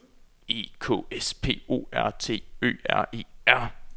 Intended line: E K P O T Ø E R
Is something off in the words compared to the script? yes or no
yes